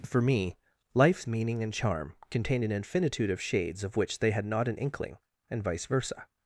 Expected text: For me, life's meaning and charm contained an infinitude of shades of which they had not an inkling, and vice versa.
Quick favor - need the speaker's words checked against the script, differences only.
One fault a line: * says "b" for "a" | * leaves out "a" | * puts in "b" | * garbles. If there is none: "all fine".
all fine